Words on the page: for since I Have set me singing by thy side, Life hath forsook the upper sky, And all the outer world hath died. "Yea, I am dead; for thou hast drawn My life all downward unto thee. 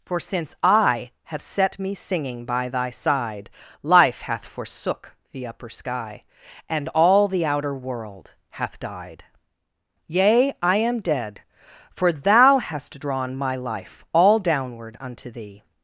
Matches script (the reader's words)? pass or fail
pass